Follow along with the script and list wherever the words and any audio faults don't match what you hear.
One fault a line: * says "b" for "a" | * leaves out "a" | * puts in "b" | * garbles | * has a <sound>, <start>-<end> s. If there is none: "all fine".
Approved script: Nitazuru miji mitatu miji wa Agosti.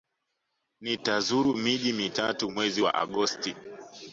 * says "mwezi" for "miji"